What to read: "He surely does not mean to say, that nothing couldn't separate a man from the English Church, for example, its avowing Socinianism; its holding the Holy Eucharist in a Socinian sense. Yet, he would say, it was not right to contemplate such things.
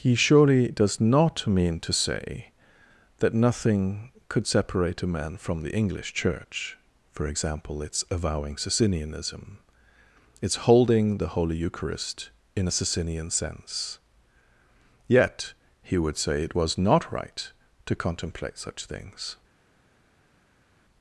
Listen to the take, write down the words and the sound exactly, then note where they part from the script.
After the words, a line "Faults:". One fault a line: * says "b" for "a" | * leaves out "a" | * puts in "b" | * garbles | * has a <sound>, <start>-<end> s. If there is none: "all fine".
"He surely does not mean to say, that nothing could separate a man from the English Church, for example, its avowing Socinianism; its holding the Holy Eucharist in a Socinian sense. Yet, he would say, it was not right to contemplate such things.
Faults:
* says "could" for "couldn't"